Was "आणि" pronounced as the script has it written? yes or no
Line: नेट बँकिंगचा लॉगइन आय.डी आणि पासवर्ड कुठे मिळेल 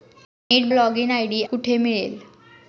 no